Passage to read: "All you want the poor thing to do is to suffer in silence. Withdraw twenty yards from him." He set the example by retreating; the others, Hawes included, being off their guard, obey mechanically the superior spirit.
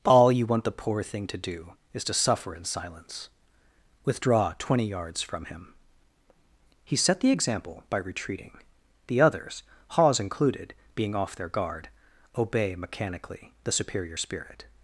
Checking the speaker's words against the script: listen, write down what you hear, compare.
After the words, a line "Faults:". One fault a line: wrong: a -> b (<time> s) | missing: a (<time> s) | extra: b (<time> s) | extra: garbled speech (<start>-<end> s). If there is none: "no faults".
"All you want the poor thing to do is to suffer in silence. Withdraw twenty yards from him." He set the example by retreating; the others, Hawes included, being off their guard, obey mechanically the superior spirit.
Faults:
no faults